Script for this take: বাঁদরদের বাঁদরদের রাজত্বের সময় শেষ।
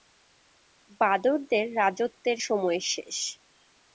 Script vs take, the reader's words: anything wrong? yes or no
yes